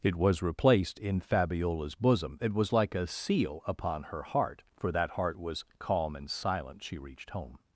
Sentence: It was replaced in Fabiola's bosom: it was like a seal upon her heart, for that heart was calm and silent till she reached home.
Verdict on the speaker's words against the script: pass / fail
fail